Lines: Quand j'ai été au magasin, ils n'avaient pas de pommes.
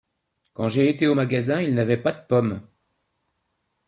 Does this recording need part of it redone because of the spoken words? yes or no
no